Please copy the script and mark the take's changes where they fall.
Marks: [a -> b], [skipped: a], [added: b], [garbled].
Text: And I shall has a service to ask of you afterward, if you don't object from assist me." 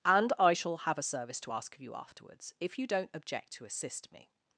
And I shall [has -> have] a service to ask of you [afterward, -> afterwards] if you don't object [from -> to] assist me."